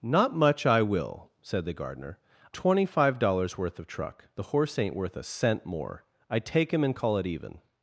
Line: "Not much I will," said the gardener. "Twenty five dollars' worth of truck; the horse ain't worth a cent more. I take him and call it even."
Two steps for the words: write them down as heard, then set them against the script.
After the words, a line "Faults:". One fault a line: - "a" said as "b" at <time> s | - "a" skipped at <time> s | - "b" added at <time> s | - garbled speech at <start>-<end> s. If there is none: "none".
"Not much I will," said the gardener. "Twenty five dollars' worth of truck; the horse ain't worth a cent more. I take him and call it even."
Faults:
none